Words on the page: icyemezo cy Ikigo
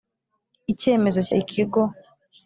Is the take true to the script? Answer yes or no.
yes